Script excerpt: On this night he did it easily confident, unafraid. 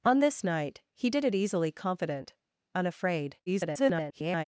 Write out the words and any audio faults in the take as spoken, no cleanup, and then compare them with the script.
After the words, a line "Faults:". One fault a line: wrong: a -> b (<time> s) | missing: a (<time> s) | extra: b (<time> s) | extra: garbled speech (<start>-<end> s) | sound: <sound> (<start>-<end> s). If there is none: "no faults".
On this night he did it easily confident, unafraid. [garbled]
Faults:
extra: garbled speech (3.5-4.4 s)